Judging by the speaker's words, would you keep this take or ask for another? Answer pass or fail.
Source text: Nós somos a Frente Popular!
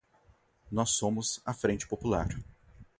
pass